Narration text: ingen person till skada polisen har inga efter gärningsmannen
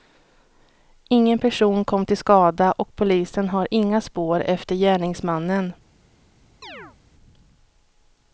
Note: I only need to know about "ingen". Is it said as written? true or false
true